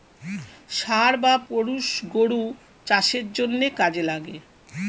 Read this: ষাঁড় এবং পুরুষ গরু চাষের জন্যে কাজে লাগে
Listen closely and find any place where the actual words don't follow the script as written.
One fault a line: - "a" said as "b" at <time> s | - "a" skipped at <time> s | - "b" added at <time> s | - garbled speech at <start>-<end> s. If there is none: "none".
- "এবং" said as "বা" at 1.2 s